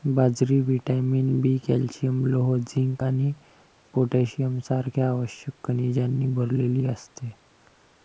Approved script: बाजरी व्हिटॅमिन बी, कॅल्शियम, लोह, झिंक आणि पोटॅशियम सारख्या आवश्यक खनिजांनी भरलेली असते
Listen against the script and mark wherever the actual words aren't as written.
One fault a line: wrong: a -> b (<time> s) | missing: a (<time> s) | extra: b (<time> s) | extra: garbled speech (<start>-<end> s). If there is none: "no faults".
no faults